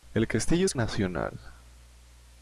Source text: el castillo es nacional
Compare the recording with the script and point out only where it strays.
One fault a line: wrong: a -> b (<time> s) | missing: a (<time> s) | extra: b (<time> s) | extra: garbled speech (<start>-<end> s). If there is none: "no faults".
no faults